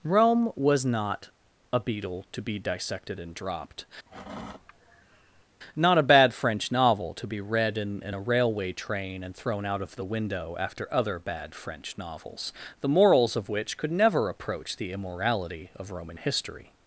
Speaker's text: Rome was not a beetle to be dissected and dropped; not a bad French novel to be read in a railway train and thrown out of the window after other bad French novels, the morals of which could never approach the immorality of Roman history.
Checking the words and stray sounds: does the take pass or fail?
fail